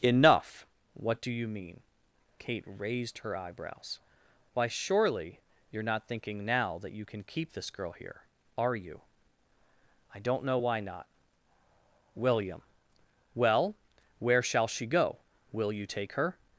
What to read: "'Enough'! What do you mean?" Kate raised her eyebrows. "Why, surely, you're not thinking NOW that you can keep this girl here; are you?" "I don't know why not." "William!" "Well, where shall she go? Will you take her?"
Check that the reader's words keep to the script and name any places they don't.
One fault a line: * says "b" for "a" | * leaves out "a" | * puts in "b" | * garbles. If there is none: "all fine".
all fine